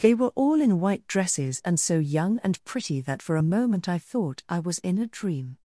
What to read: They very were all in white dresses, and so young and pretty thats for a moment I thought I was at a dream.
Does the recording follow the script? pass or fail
fail